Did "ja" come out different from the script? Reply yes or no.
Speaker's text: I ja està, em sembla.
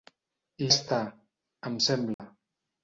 yes